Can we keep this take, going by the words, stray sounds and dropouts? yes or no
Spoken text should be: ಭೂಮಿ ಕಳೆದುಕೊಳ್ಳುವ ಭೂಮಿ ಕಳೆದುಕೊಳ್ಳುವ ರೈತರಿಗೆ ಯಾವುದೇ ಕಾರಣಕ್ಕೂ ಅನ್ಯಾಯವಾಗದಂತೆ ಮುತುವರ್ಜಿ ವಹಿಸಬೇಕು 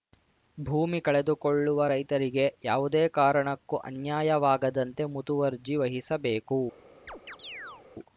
no